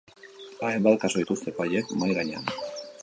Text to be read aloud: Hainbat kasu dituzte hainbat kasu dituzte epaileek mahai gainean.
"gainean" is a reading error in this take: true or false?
false